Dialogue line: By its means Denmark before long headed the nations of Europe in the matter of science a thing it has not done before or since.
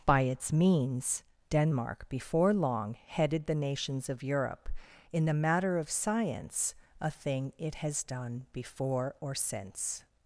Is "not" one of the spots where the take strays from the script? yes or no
yes